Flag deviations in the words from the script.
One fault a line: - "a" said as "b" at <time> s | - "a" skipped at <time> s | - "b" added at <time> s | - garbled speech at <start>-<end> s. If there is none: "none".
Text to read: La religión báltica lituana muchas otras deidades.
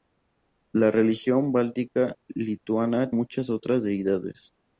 none